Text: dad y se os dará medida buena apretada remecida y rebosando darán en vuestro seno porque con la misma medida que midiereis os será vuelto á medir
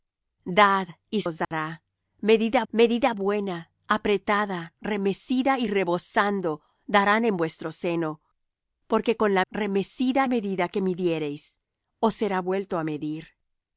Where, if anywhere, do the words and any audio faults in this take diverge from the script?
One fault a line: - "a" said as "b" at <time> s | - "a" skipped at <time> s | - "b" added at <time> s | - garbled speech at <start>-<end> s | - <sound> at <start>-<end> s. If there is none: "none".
- "se" skipped at 1.2 s
- dropout at 1.4-1.5 s
- "medida" added at 2.7 s
- "misma" said as "remecida" at 9.5 s